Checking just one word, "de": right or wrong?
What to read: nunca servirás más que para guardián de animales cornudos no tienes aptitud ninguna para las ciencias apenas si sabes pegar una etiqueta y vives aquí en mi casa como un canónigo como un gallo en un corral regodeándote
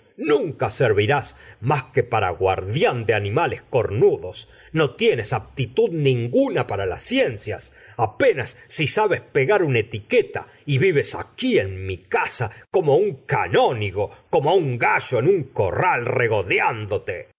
right